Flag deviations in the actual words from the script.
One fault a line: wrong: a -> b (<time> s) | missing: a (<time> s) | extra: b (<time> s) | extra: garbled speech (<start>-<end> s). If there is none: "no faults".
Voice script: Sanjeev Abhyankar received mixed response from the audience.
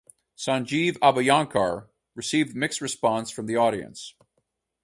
no faults